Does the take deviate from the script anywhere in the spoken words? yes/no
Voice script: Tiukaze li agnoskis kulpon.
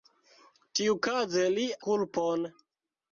yes